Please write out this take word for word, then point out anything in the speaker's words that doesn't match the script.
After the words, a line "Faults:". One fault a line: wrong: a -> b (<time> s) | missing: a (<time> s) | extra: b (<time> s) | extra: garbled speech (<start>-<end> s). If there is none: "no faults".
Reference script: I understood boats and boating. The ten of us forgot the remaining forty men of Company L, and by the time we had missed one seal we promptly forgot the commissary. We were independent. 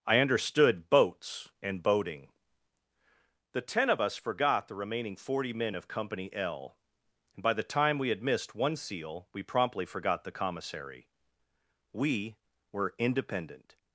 I understood boats and boating. The ten of us forgot the remaining forty men of Company L, and by the time we had missed one seal we promptly forgot the commissary. We were independent.
Faults:
no faults